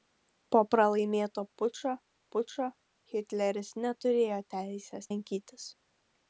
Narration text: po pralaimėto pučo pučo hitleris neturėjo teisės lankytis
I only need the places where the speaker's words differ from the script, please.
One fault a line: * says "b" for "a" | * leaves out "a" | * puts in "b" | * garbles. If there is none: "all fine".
all fine